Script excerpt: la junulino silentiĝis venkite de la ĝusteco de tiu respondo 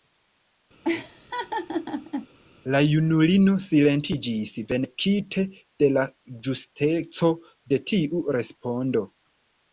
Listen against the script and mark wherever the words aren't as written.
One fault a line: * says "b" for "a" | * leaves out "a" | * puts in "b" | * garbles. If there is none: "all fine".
all fine